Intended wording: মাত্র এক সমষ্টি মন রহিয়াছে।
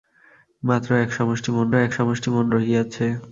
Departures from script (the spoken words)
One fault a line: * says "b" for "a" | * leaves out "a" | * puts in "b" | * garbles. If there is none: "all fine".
* puts in "এক সমষ্টি মন"